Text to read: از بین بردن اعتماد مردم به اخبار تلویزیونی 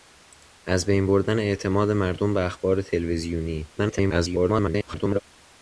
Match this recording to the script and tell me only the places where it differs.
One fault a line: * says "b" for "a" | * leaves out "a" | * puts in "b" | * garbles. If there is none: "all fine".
* garbles